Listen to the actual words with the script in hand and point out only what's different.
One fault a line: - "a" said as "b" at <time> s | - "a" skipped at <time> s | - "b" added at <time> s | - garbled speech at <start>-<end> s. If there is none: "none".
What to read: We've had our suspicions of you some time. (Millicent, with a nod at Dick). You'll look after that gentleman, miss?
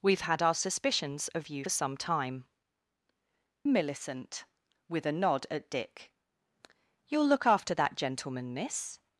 none